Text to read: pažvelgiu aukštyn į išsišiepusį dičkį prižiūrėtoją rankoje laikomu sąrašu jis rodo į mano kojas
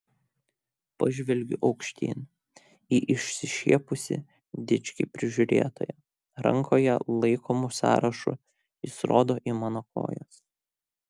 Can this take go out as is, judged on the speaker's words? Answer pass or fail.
pass